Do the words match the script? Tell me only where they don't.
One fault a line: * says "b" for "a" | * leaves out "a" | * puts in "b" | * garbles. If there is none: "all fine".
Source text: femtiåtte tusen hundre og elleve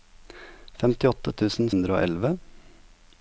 all fine